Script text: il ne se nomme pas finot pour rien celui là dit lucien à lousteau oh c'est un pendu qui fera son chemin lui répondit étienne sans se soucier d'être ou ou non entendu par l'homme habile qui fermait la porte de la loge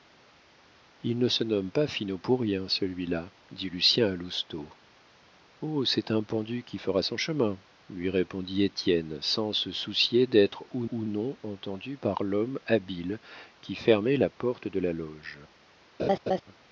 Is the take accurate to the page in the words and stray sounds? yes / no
no